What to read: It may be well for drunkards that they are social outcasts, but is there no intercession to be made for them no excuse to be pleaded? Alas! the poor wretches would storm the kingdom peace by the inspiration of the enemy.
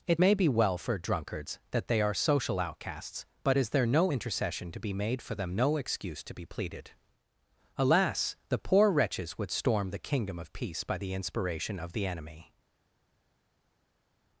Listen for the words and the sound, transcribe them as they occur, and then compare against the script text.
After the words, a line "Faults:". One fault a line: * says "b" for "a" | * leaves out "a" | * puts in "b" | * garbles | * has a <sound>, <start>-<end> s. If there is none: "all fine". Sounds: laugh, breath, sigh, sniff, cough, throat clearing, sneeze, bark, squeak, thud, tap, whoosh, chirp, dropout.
It may be well for drunkards that they are social outcasts, but is there no intercession to be made for them no excuse to be pleaded? Alas! the poor wretches would storm the kingdom of peace by the inspiration of the enemy.
Faults:
* puts in "of"